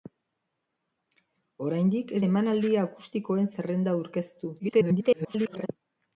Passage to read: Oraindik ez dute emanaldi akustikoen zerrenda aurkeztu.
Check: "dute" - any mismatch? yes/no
yes